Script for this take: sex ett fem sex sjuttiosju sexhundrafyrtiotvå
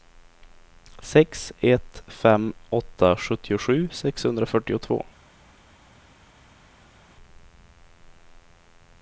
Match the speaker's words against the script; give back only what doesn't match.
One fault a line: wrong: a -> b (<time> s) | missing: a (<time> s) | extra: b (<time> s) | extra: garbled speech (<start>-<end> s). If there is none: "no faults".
wrong: sex -> åtta (2.7 s)